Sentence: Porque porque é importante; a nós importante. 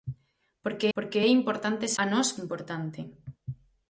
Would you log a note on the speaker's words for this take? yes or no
no